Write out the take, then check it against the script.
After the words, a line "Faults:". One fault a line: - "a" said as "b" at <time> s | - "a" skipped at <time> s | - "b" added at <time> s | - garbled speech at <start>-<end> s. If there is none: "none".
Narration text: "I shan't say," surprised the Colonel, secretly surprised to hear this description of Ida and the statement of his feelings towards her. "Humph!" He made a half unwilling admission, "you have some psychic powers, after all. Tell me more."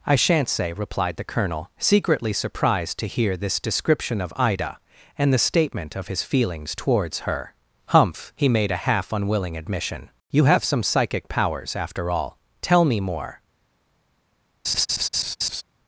"I shan't say," replied the Colonel, secretly surprised to hear this description of Ida and the statement of his feelings towards her. "Humph!" He made a half unwilling admission, "you have some psychic powers, after all. Tell me more."
Faults:
- "surprised" said as "replied" at 0.7 s